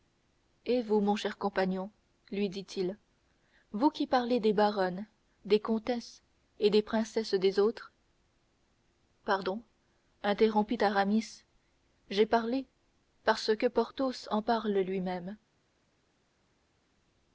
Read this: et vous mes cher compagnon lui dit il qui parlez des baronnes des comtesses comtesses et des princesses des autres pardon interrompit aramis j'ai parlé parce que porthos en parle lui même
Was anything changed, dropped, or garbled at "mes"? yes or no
yes